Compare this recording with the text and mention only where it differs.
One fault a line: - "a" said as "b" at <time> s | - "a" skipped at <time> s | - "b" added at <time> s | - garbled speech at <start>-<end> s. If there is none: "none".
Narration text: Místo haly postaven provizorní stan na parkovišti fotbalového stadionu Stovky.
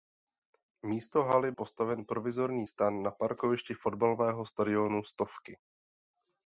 none